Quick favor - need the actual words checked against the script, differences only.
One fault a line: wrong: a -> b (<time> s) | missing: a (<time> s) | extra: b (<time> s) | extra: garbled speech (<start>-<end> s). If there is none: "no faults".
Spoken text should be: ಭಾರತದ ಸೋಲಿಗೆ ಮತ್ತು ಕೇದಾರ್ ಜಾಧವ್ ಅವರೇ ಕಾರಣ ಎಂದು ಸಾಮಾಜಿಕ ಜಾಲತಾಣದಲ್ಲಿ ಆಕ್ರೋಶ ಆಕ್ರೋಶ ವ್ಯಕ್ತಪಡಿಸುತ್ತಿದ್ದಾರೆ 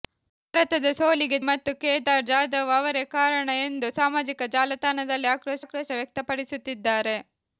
no faults